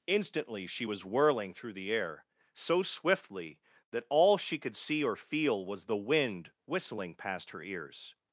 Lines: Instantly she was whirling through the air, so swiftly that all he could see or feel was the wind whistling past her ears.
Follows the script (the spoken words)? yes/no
no